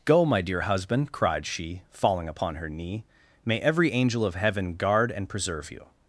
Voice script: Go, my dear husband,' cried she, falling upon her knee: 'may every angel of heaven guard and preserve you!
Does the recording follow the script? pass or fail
pass